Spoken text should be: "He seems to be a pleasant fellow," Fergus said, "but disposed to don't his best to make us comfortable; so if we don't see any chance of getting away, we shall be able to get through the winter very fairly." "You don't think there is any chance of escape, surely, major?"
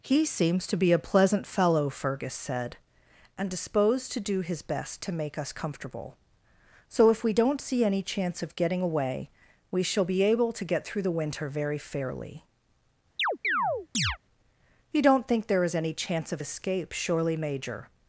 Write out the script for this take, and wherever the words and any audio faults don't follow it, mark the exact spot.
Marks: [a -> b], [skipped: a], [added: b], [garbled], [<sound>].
"He seems to be a pleasant fellow," Fergus said, ["but -> and] disposed to [don't -> do] his best to make us comfortable; so if we don't see any chance of getting away, we shall be able to get through the winter very fairly." [chirp] "You don't think there is any chance of escape, surely, major?"